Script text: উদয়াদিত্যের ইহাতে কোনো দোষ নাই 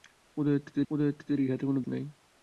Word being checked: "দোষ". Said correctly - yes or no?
no